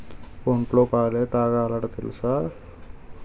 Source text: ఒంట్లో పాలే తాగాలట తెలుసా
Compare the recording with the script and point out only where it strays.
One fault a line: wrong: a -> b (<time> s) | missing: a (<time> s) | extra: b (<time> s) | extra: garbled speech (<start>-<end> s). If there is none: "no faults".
no faults